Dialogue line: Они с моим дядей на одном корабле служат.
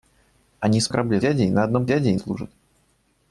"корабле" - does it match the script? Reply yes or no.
no